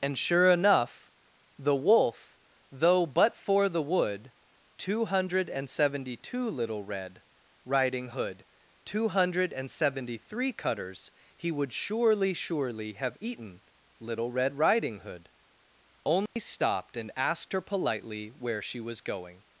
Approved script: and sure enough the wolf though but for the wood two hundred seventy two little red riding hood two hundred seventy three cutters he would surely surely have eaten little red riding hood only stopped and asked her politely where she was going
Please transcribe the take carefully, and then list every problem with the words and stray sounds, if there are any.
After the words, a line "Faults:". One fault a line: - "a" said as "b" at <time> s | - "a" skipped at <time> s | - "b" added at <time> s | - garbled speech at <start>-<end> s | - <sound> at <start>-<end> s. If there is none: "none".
and sure enough the wolf though but for the wood two hundred seventy two little red riding hood two hundred seventy three cutters he would surely surely have eaten little red riding hood only stopped and asked her politely where she was going
Faults:
- dropout at 16.3-16.4 s